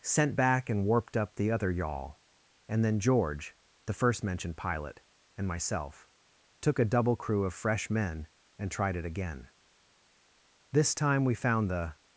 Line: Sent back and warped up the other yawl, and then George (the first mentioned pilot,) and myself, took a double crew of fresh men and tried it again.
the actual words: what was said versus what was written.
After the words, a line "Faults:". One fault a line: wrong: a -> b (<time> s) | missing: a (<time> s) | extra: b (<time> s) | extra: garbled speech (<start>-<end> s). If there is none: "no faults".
Sent back and warped up the other yawl, and then George (the first mentioned pilot,) and myself, took a double crew of fresh men and tried it again. This time we found the
Faults:
extra: This time we found the (10.7 s)